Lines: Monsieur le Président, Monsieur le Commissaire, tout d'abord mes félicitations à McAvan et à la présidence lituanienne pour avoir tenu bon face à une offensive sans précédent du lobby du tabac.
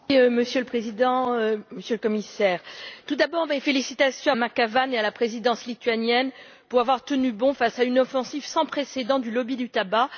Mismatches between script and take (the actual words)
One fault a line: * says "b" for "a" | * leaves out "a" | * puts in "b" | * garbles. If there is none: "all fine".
all fine